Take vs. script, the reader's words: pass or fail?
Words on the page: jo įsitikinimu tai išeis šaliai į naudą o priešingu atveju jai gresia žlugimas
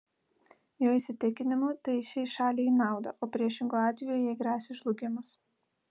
pass